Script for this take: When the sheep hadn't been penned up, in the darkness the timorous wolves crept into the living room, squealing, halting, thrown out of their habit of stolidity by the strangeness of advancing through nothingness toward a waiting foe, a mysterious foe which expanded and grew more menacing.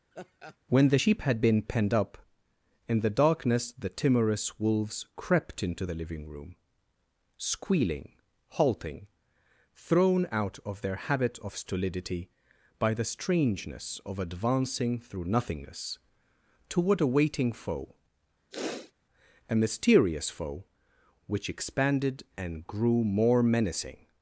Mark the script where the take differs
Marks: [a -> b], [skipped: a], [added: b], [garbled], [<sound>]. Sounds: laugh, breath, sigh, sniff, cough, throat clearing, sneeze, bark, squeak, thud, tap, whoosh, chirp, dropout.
[laugh] When the sheep [hadn't -> had] been penned up, in the darkness the timorous wolves crept into the living room, squealing, halting, thrown out of their habit of stolidity by the strangeness of advancing through nothingness toward a waiting foe, [sniff] a mysterious foe which expanded and grew more menacing.